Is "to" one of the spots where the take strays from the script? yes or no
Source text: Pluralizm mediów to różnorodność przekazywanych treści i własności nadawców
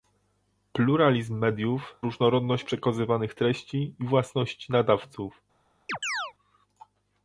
yes